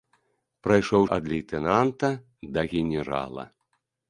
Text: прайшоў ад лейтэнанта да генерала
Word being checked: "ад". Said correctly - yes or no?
yes